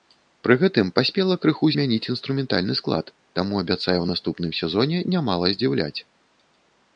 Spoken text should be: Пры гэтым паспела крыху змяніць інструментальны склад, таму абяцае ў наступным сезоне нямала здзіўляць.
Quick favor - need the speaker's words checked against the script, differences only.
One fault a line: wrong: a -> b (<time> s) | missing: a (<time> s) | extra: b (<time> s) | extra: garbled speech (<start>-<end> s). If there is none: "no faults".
no faults